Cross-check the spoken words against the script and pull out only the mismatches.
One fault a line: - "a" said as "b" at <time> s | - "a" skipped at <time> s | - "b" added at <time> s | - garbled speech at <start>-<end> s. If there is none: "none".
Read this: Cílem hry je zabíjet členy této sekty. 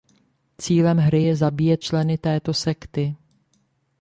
none